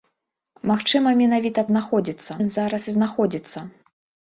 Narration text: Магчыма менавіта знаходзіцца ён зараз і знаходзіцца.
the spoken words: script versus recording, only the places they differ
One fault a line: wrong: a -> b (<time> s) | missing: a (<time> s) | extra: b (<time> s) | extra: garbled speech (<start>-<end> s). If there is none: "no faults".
no faults